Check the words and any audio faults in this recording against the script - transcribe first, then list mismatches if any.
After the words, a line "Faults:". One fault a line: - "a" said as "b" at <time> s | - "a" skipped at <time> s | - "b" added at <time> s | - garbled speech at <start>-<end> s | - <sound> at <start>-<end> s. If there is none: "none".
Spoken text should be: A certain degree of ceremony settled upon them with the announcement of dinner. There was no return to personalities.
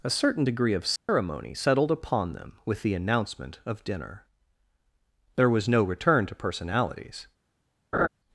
A certain degree of ceremony settled upon them with the announcement of dinner. There was no return to personalities.
Faults:
- dropout at 1.0-1.1 s
- laugh at 7.9-8.1 s